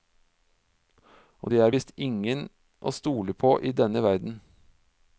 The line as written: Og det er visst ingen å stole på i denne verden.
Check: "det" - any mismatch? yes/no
no